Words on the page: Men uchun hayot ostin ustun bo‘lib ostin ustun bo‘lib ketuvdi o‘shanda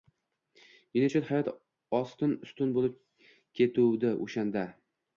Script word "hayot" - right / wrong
right